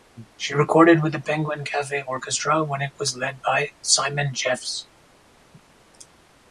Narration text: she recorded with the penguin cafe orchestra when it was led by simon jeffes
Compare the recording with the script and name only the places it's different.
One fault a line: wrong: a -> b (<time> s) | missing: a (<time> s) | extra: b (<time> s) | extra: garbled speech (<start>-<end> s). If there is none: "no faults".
no faults